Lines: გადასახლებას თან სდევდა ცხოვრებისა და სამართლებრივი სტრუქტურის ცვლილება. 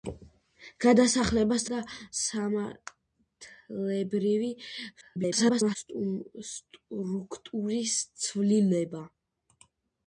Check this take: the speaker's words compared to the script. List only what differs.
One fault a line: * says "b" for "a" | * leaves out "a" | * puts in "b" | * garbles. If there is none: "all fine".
* leaves out "თან სდევდა ცხოვრებისა"
* garbles